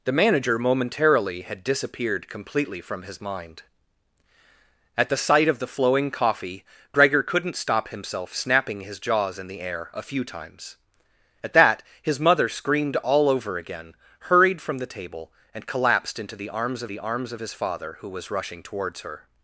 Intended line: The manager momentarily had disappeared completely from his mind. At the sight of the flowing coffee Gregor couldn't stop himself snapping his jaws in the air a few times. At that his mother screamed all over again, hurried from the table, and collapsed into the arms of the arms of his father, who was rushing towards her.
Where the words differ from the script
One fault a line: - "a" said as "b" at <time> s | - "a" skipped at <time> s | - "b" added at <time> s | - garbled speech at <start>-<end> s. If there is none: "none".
none